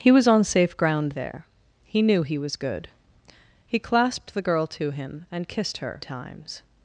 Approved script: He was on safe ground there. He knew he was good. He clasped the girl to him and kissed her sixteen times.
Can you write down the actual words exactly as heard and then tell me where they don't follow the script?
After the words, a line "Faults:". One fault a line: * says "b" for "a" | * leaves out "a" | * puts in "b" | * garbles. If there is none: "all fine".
He was on safe ground there. He knew he was good. He clasped the girl to him and kissed her times.
Faults:
* leaves out "sixteen"